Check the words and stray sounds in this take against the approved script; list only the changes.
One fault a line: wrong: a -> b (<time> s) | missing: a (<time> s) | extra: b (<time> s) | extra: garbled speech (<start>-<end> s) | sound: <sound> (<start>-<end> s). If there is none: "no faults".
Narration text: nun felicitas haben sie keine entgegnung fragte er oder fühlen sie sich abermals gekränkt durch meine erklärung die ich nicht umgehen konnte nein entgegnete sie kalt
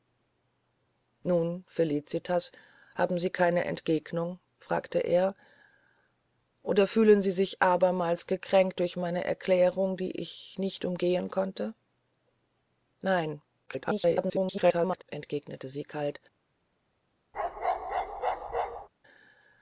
extra: garbled speech (13.7-15.0 s)
sound: bark (17.3-18.9 s)